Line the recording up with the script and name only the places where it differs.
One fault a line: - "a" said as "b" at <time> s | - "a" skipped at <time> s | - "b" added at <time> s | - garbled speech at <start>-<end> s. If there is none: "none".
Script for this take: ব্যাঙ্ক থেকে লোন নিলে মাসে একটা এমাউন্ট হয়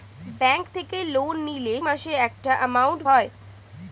none